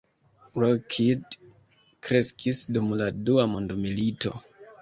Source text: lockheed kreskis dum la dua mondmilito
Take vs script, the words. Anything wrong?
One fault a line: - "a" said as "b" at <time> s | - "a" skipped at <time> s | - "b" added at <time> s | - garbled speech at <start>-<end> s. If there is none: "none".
none